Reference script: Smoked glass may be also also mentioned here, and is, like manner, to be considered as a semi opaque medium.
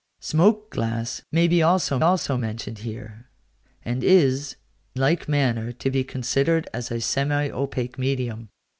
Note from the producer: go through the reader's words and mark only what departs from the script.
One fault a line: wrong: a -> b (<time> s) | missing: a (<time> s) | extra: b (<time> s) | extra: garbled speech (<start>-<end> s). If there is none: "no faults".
no faults